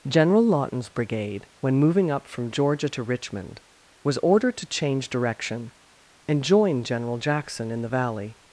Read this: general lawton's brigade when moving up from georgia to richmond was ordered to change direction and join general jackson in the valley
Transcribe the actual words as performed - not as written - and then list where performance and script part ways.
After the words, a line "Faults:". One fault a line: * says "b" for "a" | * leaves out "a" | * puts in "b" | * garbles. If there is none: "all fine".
general lawton's brigade when moving up from georgia to richmond was ordered to change direction and join general jackson in the valley
Faults:
all fine